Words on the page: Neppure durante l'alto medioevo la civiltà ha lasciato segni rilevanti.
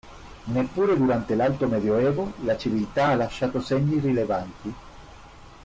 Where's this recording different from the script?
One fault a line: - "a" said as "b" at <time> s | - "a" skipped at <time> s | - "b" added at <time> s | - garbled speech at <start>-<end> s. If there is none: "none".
none